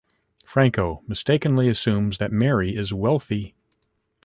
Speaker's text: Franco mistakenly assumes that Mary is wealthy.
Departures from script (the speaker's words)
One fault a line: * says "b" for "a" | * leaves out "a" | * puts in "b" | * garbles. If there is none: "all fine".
all fine